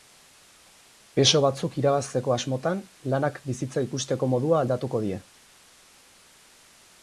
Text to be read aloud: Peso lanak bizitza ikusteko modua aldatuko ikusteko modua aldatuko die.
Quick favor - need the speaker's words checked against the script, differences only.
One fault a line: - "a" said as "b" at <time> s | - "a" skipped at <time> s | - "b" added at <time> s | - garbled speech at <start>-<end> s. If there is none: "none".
- "lanak bizitza ikusteko modua aldatuko" said as "batzuk irabazteko asmotan lanak bizitza" at 1.4 s